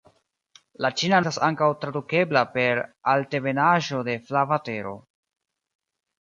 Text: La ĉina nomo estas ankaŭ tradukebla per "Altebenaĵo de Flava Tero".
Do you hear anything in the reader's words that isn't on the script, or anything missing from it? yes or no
yes